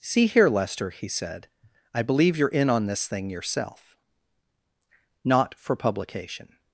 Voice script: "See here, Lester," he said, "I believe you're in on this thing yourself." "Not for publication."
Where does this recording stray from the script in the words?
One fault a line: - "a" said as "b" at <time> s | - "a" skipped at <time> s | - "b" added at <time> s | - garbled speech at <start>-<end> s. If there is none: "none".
none